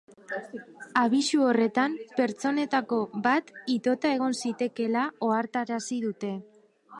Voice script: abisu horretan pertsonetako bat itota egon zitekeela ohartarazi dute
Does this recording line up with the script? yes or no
yes